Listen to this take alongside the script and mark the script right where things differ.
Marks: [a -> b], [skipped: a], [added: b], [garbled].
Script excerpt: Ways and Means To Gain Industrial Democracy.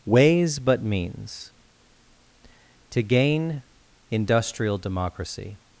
Ways [and -> but] Means To Gain Industrial Democracy.